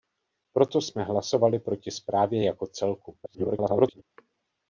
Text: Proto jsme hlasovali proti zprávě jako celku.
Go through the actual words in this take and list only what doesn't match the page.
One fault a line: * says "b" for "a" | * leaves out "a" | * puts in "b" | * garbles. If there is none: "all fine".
* garbles